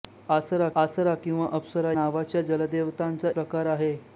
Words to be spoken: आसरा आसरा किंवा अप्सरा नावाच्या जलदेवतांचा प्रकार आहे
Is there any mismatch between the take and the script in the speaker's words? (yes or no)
no